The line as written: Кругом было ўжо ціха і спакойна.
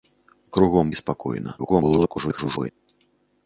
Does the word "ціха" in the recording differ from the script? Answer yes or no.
yes